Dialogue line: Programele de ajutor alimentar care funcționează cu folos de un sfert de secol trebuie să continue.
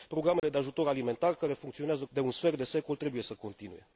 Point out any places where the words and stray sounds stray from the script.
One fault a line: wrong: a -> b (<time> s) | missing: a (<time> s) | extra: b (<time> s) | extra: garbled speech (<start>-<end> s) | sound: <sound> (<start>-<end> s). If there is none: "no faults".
sound: dropout (0.4-0.4 s)
missing: cu folos (2.0 s)